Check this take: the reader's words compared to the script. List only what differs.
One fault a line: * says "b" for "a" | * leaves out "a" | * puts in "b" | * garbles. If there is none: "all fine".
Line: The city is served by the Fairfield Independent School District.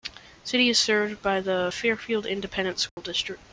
all fine